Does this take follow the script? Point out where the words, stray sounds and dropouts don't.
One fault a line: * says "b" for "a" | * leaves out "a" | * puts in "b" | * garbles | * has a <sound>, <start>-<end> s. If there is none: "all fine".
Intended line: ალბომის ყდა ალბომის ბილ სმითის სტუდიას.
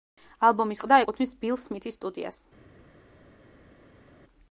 * says "ეკუთვნის" for "ალბომის"